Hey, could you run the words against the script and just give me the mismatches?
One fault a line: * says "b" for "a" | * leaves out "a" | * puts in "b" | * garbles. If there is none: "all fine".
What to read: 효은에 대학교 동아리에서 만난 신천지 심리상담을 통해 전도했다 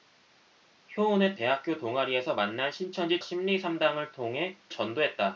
all fine